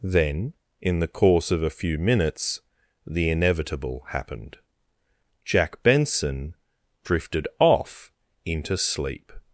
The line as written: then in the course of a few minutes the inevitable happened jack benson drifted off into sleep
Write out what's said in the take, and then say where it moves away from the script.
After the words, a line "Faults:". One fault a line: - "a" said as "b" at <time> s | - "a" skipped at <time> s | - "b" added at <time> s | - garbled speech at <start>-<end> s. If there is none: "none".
then in the course of a few minutes the inevitable happened jack benson drifted off into sleep
Faults:
none